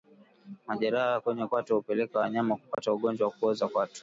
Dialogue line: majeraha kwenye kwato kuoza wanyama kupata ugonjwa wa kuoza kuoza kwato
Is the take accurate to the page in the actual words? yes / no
no